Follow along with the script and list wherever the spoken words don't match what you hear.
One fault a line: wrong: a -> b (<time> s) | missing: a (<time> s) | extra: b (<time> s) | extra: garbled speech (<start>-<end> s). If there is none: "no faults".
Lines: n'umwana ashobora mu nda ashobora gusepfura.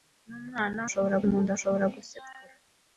no faults